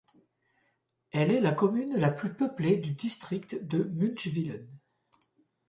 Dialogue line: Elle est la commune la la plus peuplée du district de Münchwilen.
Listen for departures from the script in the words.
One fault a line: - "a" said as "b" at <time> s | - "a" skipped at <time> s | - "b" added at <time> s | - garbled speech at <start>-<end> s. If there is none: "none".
- "la" skipped at 2.1 s